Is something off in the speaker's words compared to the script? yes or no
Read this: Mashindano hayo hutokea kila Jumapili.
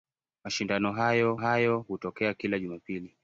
yes